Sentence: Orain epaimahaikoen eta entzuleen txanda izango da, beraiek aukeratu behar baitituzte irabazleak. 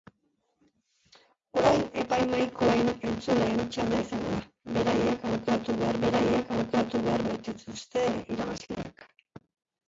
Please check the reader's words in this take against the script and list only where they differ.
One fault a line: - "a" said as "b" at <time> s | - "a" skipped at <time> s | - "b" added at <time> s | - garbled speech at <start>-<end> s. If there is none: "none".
- "eta" skipped at 2.9 s
- "beraiek aukeratu behar" added at 6.1 s